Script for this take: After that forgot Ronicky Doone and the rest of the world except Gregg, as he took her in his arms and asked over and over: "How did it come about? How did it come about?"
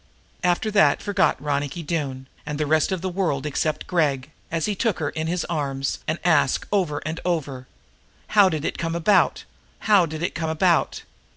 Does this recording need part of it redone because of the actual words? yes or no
no